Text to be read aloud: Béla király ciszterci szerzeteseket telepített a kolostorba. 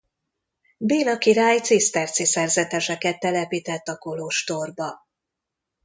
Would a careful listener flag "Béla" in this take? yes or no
no